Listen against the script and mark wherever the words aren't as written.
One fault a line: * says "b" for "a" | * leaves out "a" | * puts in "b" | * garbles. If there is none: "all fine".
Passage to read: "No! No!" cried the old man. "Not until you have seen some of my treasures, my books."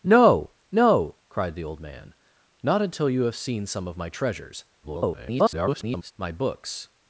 * garbles